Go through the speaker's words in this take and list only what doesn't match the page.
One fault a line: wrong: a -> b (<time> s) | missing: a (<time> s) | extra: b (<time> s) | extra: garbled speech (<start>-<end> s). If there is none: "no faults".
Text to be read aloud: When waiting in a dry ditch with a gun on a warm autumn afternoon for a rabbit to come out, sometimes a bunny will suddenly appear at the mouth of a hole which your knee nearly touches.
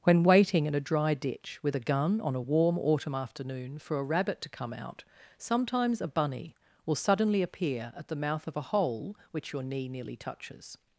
no faults